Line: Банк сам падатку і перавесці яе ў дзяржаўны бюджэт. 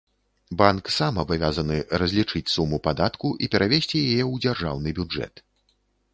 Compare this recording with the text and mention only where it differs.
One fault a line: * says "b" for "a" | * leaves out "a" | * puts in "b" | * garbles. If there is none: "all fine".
* puts in "абавязаны разлічыць суму"